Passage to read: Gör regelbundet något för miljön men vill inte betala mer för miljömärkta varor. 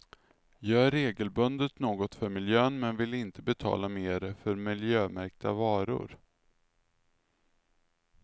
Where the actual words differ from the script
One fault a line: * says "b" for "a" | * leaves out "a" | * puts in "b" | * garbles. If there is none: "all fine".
all fine